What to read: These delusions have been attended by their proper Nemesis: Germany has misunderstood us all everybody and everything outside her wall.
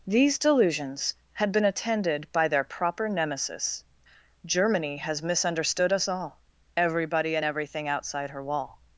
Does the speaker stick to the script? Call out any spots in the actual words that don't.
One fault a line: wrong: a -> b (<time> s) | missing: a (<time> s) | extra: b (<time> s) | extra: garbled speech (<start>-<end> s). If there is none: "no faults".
wrong: have -> had (1.3 s)